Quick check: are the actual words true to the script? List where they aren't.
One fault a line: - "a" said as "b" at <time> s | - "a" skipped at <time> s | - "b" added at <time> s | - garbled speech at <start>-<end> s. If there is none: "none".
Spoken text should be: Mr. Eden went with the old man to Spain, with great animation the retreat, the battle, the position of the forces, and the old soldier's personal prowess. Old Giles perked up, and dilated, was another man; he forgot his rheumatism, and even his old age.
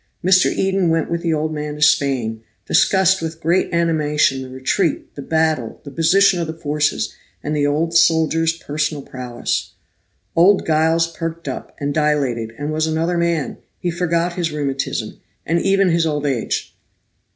- "discussed" added at 2.7 s
- "and" added at 12.6 s